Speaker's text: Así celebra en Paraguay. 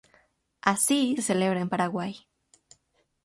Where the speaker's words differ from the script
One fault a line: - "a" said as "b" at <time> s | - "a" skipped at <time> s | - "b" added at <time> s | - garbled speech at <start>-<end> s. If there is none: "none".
none